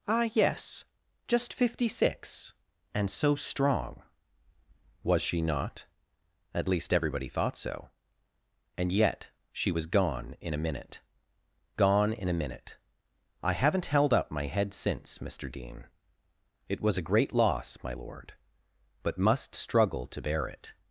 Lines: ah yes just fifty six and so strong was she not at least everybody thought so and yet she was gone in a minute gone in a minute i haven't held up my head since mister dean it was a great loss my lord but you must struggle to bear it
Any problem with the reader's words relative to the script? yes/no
yes